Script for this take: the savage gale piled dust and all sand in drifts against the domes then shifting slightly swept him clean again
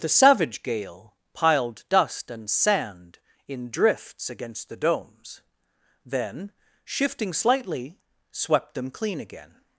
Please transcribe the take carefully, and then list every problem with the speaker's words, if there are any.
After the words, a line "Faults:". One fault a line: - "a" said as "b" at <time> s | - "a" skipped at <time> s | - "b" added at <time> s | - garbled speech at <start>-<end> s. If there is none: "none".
the savage gale piled dust and sand in drifts against the domes then shifting slightly swept them clean again
Faults:
- "all" skipped at 2.5 s
- "him" said as "them" at 8.7 s